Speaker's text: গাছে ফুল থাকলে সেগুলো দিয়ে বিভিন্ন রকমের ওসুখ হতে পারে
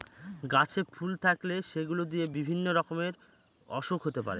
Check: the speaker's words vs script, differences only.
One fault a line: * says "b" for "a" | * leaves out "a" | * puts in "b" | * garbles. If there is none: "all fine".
all fine